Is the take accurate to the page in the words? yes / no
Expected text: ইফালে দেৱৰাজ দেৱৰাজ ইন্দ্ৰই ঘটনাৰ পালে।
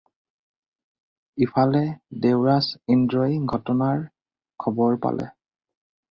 no